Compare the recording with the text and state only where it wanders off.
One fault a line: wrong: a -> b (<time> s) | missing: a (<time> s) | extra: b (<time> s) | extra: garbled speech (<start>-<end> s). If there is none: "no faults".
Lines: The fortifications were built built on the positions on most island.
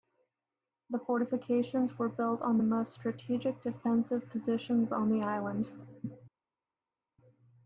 missing: built (2.4 s)
extra: most strategic defensive (2.6 s)
wrong: most -> the (5.1 s)